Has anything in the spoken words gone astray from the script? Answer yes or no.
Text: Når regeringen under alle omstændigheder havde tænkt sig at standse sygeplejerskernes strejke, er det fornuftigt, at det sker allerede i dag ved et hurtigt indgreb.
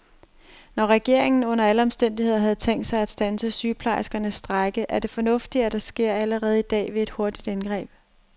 no